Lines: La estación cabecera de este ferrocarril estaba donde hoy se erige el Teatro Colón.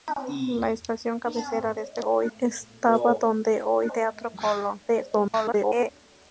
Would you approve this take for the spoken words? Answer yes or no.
no